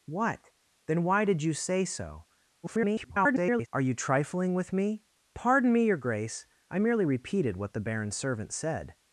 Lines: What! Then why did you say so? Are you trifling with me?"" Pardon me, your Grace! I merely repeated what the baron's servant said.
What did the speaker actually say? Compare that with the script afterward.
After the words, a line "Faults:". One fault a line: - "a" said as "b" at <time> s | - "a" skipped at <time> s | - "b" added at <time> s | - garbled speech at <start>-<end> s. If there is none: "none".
What! Then why did you say so? [garbled] Are you trifling with me?"" Pardon me, your Grace! I merely repeated what the baron's servant said.
Faults:
- garbled speech at 2.6-3.7 s